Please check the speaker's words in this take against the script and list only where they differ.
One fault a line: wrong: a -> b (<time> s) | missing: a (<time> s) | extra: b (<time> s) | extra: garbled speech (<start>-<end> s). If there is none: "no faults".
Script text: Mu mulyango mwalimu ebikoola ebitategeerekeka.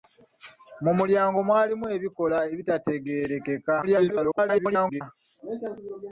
extra: garbled speech (3.8-5.0 s)